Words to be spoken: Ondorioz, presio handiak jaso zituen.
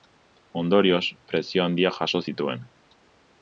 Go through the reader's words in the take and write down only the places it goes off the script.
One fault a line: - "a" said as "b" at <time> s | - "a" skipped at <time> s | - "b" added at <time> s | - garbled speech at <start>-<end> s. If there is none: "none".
none